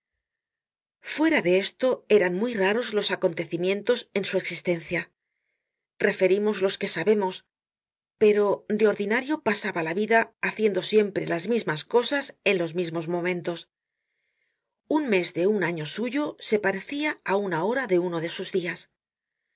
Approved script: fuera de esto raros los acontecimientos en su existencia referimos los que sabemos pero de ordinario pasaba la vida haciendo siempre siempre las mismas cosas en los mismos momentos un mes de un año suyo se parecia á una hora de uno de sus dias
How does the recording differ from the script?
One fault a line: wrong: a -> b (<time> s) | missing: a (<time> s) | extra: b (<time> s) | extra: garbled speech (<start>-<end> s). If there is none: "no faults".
extra: eran muy (2.2 s)
missing: siempre (11.3 s)